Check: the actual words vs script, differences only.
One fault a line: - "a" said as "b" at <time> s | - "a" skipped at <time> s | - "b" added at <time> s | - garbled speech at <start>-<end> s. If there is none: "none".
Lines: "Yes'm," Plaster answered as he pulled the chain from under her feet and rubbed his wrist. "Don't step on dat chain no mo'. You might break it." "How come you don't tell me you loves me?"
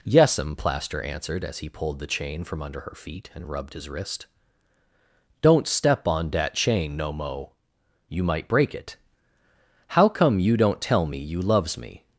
none